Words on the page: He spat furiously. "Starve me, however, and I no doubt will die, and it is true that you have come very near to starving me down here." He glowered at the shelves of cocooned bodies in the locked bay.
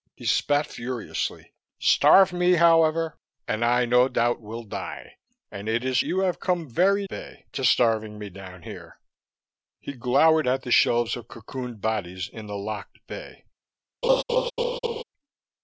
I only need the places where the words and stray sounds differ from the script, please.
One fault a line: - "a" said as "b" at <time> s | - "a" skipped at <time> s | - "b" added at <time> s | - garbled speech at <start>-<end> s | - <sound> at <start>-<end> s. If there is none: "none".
- "true that" skipped at 6.0 s
- "near" said as "bay" at 7.1 s
- laugh at 14.0-15.0 s